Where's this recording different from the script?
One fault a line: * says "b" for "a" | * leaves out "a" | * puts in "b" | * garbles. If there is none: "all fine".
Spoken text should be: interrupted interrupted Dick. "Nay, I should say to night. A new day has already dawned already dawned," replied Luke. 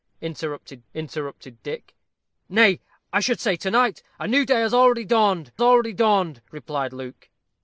all fine